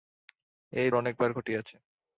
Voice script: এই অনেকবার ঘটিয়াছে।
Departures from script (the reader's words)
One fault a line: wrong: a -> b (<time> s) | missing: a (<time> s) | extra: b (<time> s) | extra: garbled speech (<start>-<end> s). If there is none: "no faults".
no faults